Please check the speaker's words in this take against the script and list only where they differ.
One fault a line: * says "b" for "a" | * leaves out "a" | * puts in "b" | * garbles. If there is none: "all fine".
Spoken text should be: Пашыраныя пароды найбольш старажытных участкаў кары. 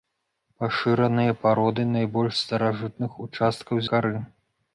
all fine